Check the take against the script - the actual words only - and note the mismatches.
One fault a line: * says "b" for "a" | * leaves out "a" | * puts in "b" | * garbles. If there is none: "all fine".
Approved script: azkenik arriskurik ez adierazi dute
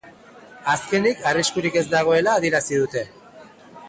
* puts in "dagoela"